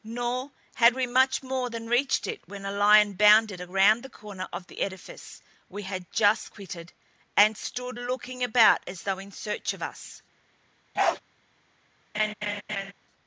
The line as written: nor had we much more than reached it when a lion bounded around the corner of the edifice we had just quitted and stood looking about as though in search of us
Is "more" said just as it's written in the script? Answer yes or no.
yes